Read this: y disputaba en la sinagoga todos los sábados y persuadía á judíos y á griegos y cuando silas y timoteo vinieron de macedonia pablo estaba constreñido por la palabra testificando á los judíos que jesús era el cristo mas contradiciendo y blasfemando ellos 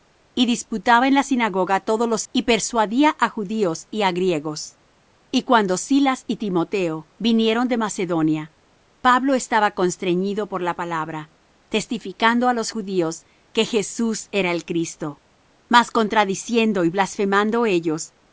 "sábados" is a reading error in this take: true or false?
true